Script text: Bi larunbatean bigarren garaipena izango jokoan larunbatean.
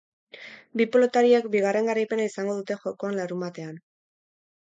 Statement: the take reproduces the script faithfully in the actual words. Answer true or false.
false